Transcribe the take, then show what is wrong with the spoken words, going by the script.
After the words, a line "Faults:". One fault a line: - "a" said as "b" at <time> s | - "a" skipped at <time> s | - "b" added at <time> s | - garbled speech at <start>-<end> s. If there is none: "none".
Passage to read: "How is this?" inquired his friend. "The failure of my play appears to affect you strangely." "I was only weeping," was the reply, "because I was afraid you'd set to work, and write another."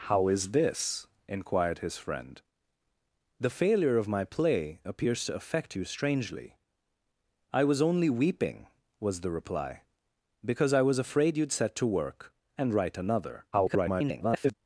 "How is this?" inquired his friend. "The failure of my play appears to affect you strangely." "I was only weeping," was the reply, "because I was afraid you'd set to work, and write another." [garbled]
Faults:
- garbled speech at 13.5-14.5 s